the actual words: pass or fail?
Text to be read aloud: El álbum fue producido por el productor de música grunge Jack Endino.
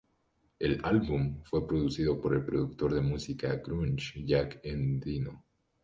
pass